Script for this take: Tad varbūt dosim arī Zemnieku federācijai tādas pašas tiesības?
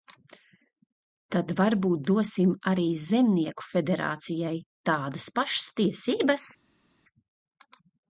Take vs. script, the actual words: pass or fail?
pass